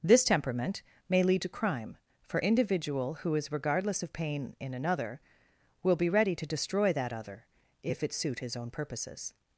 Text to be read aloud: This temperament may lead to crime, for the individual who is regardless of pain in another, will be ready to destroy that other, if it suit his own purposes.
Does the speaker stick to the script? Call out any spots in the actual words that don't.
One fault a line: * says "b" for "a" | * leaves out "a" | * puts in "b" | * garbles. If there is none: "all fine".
* leaves out "the"